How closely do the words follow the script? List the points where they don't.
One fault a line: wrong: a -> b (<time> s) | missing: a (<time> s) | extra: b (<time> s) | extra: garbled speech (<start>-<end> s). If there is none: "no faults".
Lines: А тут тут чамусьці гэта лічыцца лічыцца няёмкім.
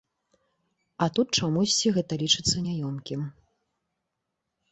missing: тут (1.3 s)
missing: лічыцца (2.6 s)